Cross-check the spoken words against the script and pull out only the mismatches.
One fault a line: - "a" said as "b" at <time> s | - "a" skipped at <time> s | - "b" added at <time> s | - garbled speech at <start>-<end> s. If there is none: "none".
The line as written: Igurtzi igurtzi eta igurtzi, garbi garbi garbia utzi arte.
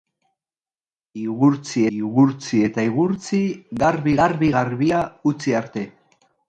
none